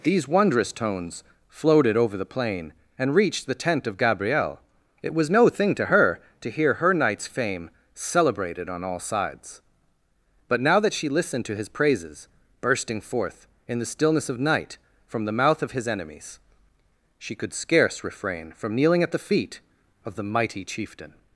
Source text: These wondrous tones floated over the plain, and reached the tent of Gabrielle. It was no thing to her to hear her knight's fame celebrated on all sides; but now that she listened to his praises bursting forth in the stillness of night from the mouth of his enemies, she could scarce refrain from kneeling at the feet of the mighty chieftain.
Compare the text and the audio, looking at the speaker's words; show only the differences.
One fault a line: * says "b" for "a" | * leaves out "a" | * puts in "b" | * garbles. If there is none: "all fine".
all fine